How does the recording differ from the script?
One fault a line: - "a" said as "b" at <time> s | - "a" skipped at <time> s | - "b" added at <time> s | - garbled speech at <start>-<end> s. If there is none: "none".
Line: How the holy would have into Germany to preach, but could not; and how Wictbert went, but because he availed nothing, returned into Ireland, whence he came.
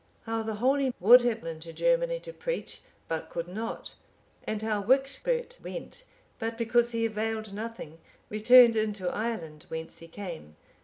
none